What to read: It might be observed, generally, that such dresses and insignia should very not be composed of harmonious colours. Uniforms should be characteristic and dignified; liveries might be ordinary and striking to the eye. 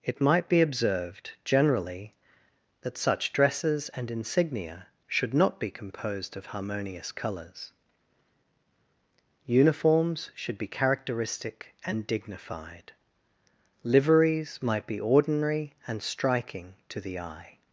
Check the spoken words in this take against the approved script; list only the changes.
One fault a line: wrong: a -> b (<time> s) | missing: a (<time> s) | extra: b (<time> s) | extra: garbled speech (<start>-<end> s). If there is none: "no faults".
missing: very (5.3 s)